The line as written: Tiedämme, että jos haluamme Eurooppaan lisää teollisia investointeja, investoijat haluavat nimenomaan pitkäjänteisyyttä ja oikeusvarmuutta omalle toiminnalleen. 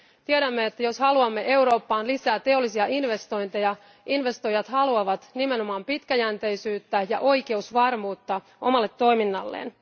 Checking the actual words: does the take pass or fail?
pass